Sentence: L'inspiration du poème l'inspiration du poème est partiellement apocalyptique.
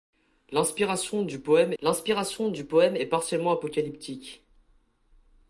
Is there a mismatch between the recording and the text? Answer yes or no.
no